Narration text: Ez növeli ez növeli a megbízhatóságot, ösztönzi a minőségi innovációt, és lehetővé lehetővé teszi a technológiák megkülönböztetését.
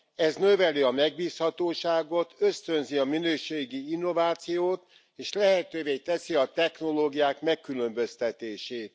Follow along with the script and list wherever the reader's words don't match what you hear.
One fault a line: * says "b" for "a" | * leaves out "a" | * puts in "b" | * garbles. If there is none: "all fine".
* leaves out "ez növeli"
* leaves out "lehetővé"